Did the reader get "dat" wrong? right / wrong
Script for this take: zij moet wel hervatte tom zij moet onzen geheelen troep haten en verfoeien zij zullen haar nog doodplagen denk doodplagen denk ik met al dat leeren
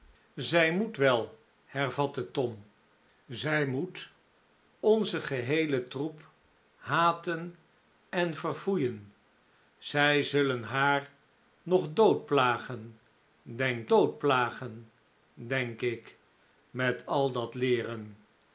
right